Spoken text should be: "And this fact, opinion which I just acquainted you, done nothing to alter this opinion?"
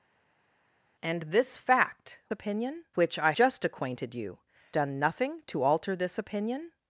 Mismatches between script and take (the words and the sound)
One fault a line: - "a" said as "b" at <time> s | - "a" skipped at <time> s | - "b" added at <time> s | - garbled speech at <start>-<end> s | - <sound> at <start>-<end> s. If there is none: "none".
none